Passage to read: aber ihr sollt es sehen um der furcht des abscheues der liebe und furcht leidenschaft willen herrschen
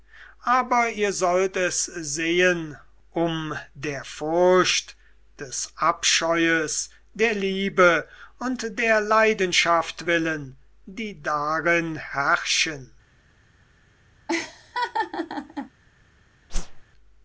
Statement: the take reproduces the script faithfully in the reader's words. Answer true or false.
false